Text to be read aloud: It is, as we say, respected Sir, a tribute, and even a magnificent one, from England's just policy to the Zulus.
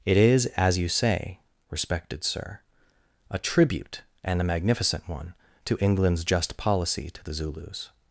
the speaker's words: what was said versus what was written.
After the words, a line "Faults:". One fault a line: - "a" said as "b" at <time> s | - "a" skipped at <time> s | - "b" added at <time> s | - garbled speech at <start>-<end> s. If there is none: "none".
It is, as you say, respected Sir, a tribute, and a magnificent one, to England's just policy to the Zulus.
Faults:
- "we" said as "you" at 0.8 s
- "even" skipped at 4.4 s
- "from" said as "to" at 5.6 s